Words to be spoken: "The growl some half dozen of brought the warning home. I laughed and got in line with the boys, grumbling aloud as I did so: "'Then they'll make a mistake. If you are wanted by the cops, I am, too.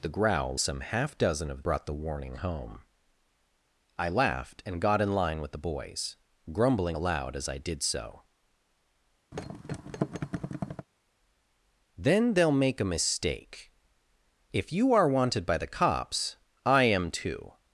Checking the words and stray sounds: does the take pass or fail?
fail